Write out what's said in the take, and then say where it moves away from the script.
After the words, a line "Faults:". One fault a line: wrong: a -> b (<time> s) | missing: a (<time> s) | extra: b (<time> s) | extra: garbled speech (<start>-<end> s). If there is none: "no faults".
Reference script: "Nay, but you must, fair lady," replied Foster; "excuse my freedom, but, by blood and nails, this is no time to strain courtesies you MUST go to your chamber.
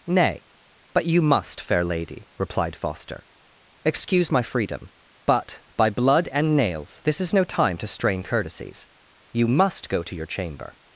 "Nay, but you must, fair lady," replied Foster; "excuse my freedom, but, by blood and nails, this is no time to strain courtesies you MUST go to your chamber.
Faults:
no faults